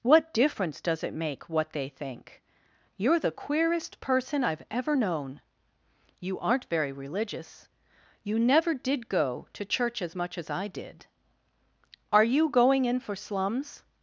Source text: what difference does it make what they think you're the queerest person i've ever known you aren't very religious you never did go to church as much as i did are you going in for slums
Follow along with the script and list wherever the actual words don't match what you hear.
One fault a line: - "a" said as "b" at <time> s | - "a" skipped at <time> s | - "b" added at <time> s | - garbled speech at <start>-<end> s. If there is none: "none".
none